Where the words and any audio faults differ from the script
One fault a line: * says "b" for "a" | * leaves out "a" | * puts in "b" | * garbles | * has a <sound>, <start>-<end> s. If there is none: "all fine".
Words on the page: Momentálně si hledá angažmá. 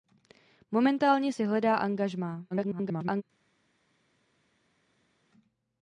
* garbles